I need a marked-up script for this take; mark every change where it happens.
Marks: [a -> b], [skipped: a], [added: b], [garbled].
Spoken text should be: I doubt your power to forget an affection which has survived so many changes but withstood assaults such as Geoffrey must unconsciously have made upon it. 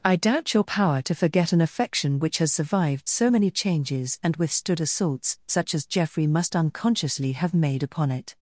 I doubt your power to forget an affection which has survived so many changes [but -> and] withstood assaults such as Geoffrey must unconsciously have made upon it.